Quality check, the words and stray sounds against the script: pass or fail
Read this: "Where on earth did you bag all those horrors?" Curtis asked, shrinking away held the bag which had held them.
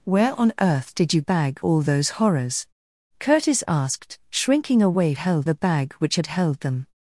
pass